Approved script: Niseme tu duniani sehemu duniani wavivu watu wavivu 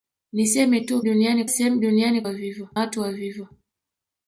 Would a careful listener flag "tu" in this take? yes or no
no